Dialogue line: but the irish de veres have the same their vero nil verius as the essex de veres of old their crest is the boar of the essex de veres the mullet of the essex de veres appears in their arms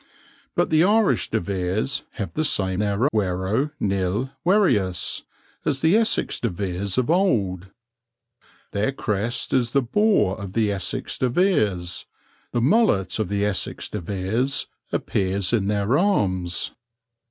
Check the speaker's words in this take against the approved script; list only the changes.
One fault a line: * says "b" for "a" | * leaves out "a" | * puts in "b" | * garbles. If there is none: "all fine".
all fine